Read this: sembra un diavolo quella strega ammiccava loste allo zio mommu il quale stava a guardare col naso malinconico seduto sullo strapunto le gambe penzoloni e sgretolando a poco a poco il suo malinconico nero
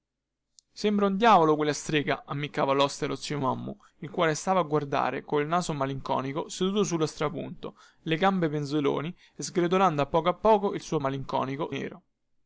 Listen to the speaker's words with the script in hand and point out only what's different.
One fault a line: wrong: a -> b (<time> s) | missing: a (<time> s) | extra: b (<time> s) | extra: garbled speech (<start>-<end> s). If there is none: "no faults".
no faults